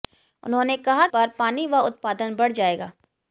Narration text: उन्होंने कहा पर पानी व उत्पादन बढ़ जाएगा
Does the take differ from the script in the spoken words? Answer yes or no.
no